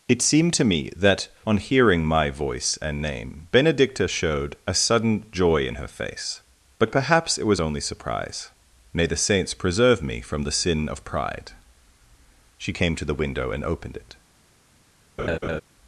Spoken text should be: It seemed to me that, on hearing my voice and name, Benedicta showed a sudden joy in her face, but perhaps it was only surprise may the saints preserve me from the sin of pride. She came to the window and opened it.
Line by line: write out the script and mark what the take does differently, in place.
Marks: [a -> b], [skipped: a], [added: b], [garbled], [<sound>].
It seemed to me that, on hearing my voice and name, Benedicta showed a sudden joy in her face, but perhaps it was only surprise may the saints preserve me from the sin of pride. She came to the window and opened it. [laugh]